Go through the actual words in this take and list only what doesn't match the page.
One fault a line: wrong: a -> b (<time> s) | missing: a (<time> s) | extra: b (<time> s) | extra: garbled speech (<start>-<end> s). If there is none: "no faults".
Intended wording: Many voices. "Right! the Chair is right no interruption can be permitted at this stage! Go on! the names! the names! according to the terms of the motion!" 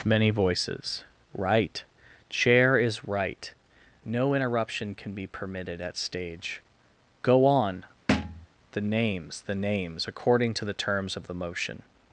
missing: the (1.8 s)
missing: this (6.0 s)